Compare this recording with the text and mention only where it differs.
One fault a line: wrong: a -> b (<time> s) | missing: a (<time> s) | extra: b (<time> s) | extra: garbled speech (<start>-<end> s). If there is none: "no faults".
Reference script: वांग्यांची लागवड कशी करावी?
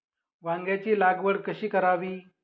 no faults